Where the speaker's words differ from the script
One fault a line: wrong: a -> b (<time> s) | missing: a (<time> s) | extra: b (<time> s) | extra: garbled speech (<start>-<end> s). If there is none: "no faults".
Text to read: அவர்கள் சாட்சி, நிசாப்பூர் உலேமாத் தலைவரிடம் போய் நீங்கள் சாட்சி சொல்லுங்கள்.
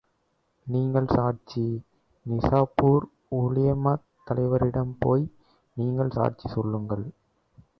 wrong: அவர்கள் -> நீங்கள் (0.7 s)